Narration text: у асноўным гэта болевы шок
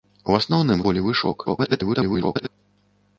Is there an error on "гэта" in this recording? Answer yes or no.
yes